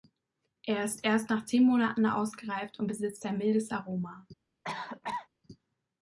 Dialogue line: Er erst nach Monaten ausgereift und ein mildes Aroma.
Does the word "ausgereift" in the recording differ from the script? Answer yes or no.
no